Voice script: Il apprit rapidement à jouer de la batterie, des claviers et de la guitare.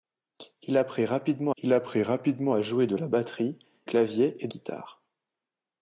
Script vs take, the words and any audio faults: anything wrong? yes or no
yes